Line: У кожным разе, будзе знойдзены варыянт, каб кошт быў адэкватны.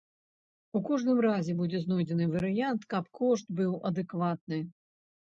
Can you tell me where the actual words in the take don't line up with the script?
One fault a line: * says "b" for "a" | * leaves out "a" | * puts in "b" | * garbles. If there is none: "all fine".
all fine